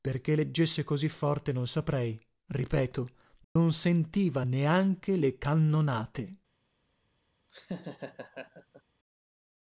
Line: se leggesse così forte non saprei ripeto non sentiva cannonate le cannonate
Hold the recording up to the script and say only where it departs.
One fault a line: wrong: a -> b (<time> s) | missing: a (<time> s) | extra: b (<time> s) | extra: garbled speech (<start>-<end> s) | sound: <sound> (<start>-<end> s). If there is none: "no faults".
wrong: se -> perché (0.0 s)
sound: dropout (3.4-3.6 s)
wrong: cannonate -> neanche (4.4 s)
sound: laugh (7.5-8.8 s)